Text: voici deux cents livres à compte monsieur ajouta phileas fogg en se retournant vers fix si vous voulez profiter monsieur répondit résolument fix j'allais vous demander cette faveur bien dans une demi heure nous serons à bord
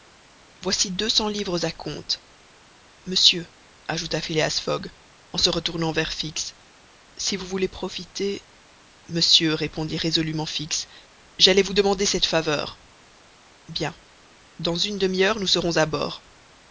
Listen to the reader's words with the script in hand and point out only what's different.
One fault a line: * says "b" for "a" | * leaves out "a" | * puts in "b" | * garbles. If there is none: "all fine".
all fine